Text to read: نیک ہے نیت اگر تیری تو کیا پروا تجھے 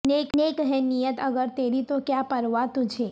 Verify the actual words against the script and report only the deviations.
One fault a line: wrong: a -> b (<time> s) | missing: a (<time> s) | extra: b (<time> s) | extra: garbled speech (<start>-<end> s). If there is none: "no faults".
extra: نیک (0.4 s)